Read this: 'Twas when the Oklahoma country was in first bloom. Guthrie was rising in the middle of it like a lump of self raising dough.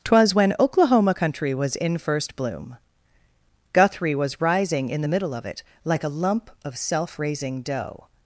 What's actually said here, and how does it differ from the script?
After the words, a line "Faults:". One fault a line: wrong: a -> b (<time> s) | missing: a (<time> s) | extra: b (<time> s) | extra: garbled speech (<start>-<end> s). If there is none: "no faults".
'Twas when Oklahoma country was in first bloom. Guthrie was rising in the middle of it like a lump of self raising dough.
Faults:
missing: the (0.6 s)